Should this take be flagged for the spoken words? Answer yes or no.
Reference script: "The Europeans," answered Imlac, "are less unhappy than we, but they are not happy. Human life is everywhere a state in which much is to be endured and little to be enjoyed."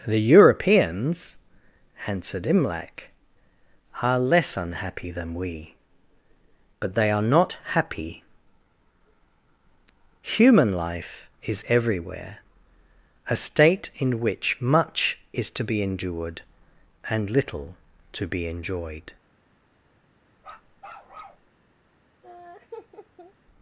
no